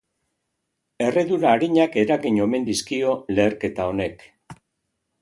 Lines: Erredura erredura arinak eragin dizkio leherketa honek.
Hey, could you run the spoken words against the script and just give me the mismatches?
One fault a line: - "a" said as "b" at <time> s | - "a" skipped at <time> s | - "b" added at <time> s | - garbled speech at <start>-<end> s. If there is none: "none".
- "erredura" skipped at 1.5 s
- "omen" added at 2.5 s